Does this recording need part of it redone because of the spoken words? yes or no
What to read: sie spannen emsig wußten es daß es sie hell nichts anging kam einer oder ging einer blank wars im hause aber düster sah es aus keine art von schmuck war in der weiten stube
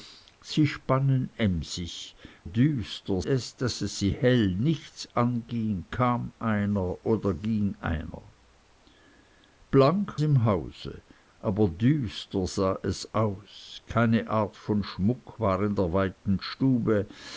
yes